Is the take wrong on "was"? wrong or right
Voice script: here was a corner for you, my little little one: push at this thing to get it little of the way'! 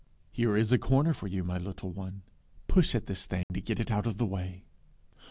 wrong